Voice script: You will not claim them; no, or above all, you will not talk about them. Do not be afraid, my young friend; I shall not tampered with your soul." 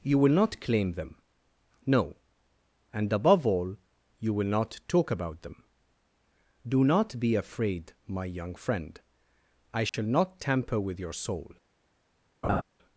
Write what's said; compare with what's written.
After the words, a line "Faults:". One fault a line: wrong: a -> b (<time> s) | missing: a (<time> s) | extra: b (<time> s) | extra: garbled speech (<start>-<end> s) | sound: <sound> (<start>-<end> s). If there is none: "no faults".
You will not claim them; no, and above all, you will not talk about them. Do not be afraid, my young friend; I shall not tamper with your soul."
Faults:
wrong: or -> and (2.9 s)
sound: dropout (9.9-9.9 s)
wrong: tampered -> tamper (10.4 s)
sound: laugh (12.4-12.6 s)